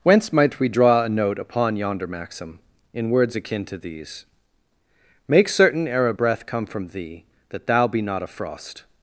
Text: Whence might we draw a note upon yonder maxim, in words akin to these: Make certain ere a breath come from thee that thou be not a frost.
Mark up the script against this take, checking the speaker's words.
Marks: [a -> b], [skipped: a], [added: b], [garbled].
Whence might we draw a note upon yonder maxim, in words akin to these: Make certain ere a breath come from thee that thou be not a frost.